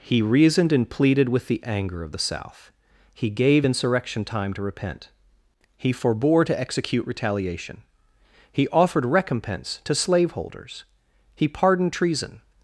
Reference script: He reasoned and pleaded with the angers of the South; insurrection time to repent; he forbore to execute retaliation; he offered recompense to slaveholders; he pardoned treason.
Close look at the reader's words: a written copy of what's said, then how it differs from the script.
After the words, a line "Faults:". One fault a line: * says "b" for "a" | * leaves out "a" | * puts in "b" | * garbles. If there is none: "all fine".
He reasoned and pleaded with the anger of the South; he gave insurrection time to repent; he forbore to execute retaliation; he offered recompense to slaveholders; he pardoned treason.
Faults:
* says "anger" for "angers"
* puts in "he gave"